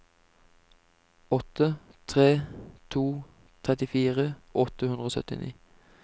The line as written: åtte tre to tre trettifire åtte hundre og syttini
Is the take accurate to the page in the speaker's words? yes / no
no